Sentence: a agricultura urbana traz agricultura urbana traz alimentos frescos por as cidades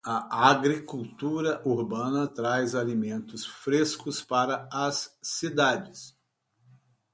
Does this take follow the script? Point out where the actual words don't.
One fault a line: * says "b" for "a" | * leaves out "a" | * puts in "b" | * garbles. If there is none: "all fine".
* leaves out "agricultura urbana traz"
* says "para" for "por"